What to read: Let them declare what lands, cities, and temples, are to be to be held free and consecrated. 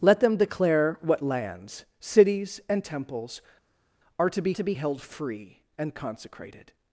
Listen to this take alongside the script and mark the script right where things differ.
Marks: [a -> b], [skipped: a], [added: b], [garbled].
Let them declare what lands, cities, and temples, are to be to be held free and consecrated.